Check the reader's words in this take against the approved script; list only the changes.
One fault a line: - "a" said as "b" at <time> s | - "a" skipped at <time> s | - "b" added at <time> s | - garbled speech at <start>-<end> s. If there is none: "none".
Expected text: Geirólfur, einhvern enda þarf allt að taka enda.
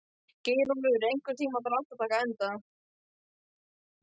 - "enda" said as "tímann" at 1.4 s